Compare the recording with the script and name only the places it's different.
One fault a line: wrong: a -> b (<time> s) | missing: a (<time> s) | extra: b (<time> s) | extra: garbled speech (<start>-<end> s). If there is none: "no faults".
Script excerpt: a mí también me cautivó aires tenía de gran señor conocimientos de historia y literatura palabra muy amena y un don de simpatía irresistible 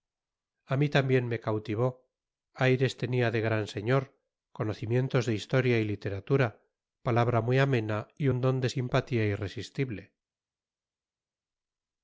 no faults